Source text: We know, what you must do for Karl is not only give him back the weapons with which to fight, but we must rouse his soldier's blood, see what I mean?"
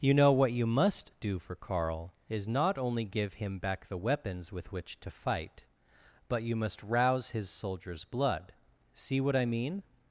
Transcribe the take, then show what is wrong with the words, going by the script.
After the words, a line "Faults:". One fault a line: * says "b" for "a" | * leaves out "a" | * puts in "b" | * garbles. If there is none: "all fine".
You know, what you must do for Karl is not only give him back the weapons with which to fight, but you must rouse his soldier's blood, see what I mean?"
Faults:
* says "You" for "We"
* says "you" for "we"